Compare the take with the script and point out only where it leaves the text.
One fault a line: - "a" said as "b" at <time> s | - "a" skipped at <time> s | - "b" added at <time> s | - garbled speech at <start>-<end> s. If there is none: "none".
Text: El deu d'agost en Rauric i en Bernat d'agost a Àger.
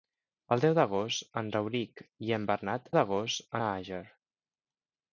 none